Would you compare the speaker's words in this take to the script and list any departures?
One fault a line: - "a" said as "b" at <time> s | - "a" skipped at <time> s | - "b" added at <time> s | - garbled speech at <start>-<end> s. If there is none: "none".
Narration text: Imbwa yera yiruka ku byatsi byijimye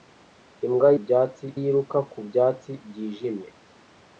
- "yera" said as "byatsi" at 1.0 s